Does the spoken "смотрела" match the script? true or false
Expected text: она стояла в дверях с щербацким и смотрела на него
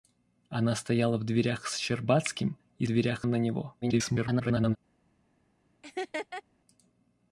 false